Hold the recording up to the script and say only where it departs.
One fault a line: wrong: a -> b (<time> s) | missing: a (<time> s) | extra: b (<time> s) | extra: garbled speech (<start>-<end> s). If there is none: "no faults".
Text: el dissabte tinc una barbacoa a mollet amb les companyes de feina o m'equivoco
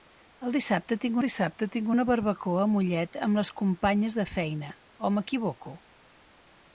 extra: dissabte tinc (1.2 s)